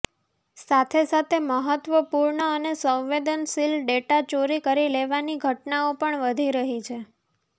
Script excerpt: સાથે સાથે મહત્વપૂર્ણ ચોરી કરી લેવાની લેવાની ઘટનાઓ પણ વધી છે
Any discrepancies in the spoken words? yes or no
yes